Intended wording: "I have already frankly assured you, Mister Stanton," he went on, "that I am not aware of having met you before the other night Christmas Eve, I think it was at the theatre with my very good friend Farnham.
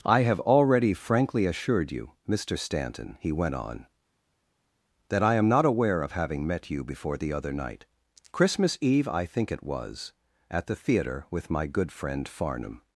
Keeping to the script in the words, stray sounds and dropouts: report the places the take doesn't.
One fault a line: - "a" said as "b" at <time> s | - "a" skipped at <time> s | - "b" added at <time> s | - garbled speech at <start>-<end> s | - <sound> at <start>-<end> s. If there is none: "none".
- "very" skipped at 11.7 s